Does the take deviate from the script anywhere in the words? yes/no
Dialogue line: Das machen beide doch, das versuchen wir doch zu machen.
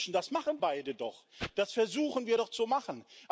no